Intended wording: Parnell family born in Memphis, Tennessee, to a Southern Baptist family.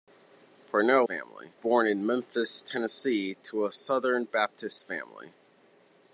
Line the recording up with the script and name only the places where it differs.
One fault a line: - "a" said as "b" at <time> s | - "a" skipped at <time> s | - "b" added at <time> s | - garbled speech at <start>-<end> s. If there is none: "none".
none